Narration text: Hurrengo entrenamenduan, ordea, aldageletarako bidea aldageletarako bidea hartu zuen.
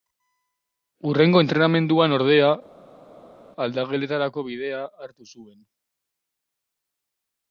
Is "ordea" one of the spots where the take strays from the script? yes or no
no